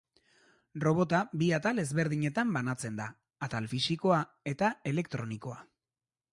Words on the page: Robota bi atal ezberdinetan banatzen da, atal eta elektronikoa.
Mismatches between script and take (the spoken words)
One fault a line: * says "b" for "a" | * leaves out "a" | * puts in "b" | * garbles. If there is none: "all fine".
* puts in "fisikoa"